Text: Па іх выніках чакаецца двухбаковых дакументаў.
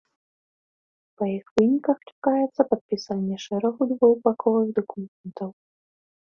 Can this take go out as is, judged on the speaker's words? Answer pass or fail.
fail